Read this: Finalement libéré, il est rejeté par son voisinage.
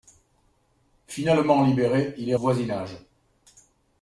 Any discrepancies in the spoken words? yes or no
yes